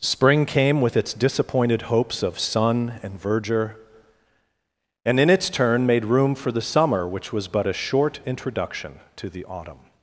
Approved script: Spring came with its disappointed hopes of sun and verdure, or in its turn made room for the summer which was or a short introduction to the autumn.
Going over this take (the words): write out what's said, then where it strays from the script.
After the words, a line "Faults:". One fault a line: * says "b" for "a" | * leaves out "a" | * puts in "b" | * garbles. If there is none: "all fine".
Spring came with its disappointed hopes of sun and verdure, and in its turn made room for the summer which was but a short introduction to the autumn.
Faults:
* says "and" for "or"
* says "but" for "or"